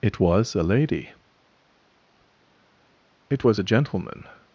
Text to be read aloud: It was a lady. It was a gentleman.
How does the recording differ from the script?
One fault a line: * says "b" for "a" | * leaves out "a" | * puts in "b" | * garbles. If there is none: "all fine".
all fine